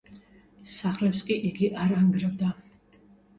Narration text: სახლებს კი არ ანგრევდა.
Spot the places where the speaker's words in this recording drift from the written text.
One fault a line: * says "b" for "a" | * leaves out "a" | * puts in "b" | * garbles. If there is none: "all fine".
* puts in "იგი"